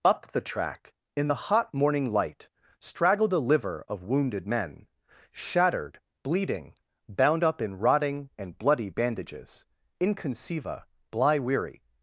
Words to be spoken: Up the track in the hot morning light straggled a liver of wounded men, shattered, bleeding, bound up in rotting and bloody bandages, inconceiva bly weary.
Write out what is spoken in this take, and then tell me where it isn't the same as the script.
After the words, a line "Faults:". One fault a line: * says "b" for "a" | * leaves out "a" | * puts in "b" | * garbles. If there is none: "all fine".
Up the track in the hot morning light straggled a liver of wounded men, shattered, bleeding, bound up in rotting and bloody bandages, inconceiva bly weary.
Faults:
all fine